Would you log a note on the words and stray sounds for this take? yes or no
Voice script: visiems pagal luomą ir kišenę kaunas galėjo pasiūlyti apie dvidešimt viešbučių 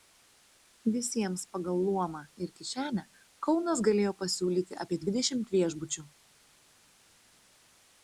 no